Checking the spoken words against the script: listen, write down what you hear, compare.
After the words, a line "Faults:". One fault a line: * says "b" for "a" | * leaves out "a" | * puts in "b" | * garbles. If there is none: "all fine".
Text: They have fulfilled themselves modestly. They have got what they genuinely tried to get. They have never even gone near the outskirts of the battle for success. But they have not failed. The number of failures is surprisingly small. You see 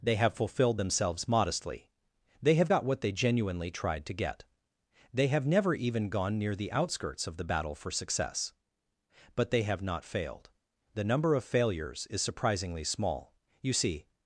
They have fulfilled themselves modestly. They have got what they genuinely tried to get. They have never even gone near the outskirts of the battle for success. But they have not failed. The number of failures is surprisingly small. You see
Faults:
all fine